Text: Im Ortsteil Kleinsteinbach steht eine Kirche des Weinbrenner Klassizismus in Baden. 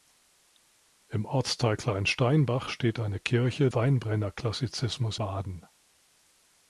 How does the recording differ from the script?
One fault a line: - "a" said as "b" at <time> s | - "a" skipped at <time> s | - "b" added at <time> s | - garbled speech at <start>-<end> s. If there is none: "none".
- "des" skipped at 3.7 s
- "in" skipped at 5.2 s